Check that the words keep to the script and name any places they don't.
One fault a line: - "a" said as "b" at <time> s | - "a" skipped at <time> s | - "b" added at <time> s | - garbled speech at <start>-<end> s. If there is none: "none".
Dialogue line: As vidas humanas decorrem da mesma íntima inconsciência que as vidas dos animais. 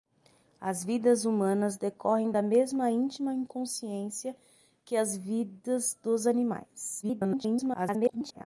- garbled speech at 7.0-8.5 s